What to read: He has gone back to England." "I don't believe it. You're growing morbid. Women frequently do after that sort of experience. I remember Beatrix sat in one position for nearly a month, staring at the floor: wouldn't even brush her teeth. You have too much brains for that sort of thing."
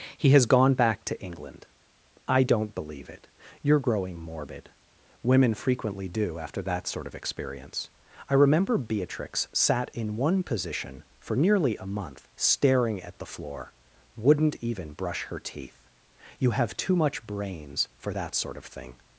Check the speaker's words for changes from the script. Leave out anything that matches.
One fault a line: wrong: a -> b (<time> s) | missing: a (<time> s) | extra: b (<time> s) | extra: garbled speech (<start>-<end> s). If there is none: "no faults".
no faults